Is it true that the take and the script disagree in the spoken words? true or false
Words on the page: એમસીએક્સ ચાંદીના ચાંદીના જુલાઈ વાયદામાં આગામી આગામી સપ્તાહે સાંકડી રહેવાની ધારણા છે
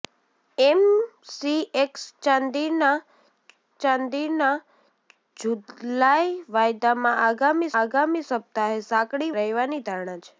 false